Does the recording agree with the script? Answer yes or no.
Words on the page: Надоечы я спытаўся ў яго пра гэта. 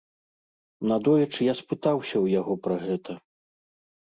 yes